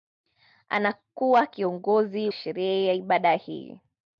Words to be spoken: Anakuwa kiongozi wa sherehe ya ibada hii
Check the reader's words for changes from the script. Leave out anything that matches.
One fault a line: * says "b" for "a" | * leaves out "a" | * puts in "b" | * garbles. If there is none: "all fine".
* leaves out "wa"